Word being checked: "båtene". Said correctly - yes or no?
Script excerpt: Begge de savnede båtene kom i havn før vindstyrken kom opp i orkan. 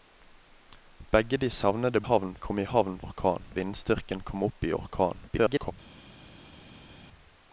no